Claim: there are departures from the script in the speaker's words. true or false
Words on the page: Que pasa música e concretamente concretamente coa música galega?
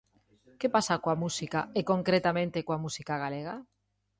true